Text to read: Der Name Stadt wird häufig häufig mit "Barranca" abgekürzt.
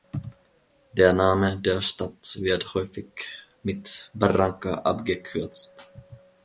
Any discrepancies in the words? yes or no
yes